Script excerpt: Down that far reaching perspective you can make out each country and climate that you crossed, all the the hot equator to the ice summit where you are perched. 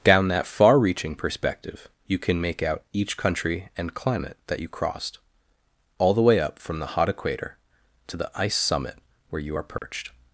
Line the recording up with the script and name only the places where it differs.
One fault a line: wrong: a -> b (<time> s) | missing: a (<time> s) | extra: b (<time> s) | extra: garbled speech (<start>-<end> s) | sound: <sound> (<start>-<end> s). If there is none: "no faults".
extra: way up from (6.2 s)
sound: dropout (9.8-9.8 s)